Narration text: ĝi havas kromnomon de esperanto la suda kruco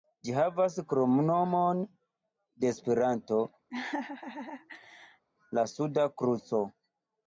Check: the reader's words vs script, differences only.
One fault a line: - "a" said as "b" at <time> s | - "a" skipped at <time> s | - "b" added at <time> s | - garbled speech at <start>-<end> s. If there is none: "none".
none